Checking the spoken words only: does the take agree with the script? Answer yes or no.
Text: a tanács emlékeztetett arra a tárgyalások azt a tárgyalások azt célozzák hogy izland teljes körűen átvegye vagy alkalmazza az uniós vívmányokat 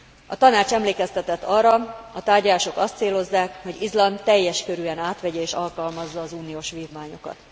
no